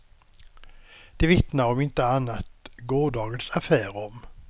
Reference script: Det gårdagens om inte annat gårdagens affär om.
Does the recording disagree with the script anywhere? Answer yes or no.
yes